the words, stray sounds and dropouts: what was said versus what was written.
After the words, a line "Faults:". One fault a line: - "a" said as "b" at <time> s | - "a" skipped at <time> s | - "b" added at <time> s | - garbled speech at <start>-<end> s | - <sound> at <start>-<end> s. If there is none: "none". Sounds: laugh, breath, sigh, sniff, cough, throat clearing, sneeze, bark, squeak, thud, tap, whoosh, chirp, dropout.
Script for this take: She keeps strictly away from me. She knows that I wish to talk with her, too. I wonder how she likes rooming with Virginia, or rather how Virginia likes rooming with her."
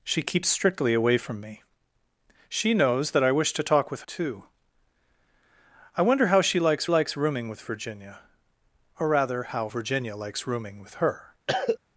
She keeps strictly away from me. She knows that I wish to talk with too. I wonder how she likes likes rooming with Virginia, or rather how Virginia likes rooming with her."
Faults:
- "her" skipped at 4.0 s
- "likes" added at 6.9 s
- cough at 11.5-11.8 s